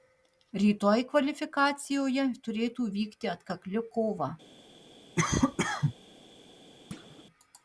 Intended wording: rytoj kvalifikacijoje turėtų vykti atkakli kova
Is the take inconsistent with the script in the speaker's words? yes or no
no